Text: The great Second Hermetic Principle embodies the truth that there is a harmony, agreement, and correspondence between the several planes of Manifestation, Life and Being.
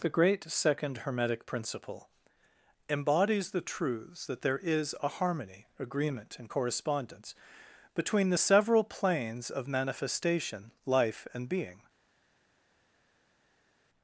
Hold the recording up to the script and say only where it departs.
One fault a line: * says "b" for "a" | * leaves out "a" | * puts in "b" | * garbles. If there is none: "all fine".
* says "truths" for "truth"